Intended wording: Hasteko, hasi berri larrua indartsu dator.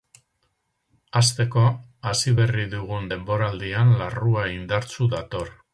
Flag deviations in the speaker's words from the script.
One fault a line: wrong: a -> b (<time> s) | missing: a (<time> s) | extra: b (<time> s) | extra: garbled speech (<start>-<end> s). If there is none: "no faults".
extra: dugun denboraldian (2.8 s)